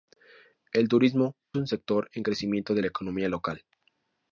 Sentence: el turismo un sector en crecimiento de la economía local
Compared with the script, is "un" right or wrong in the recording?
right